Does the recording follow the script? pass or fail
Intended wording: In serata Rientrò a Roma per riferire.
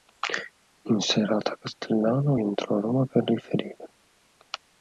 fail